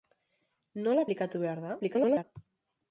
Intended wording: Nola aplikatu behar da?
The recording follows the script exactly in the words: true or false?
false